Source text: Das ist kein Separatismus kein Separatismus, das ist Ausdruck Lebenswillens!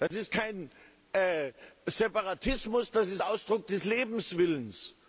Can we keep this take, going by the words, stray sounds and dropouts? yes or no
no